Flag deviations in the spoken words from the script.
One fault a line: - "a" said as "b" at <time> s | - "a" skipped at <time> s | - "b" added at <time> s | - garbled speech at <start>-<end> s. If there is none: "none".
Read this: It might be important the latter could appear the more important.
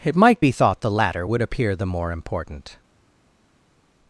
- "important" said as "thought" at 0.5 s
- "could" said as "would" at 1.2 s